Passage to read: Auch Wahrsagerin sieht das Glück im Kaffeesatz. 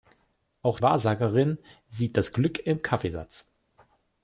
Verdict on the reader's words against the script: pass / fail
pass